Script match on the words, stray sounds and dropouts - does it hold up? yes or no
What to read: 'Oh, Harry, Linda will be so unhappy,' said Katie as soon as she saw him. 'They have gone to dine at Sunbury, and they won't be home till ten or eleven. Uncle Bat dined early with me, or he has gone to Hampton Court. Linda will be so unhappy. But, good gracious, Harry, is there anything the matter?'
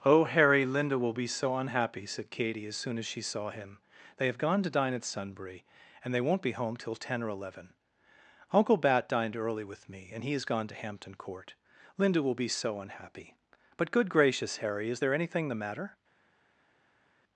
no